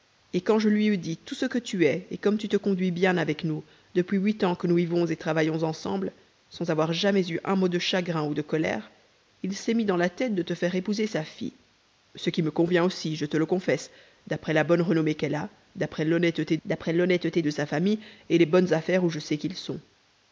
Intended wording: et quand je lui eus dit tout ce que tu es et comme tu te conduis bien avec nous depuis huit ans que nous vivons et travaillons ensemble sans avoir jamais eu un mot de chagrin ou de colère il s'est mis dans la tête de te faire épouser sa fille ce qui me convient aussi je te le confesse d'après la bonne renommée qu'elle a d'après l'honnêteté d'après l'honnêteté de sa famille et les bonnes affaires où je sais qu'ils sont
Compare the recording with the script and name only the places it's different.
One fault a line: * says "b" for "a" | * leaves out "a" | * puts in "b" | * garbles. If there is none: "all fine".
all fine